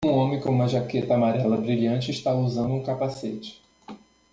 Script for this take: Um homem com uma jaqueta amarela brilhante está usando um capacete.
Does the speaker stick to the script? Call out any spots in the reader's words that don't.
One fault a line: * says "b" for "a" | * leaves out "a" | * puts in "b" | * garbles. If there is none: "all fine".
all fine